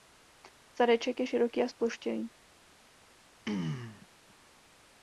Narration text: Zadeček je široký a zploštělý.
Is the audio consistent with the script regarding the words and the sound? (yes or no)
no